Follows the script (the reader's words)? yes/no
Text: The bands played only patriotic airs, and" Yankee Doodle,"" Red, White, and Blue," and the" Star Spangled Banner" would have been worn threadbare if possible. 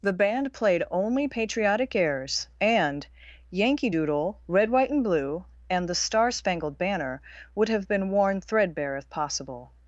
no